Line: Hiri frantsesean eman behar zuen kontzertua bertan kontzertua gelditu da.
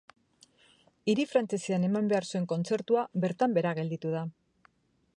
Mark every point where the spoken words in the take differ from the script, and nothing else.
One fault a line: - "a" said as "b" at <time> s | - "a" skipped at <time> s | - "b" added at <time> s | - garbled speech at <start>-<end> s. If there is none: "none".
- "kontzertua" said as "behera" at 3.6 s